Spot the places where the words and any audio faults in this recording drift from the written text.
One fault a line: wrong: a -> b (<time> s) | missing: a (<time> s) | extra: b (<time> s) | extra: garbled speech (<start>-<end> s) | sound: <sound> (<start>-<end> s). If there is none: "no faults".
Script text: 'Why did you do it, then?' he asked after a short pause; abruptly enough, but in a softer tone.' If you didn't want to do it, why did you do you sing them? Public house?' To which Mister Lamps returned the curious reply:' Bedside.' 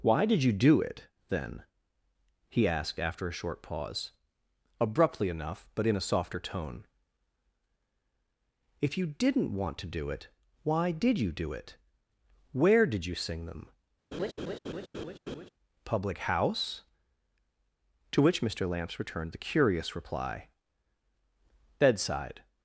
extra: it Where did (11.5 s)
sound: laugh (14.1-15.5 s)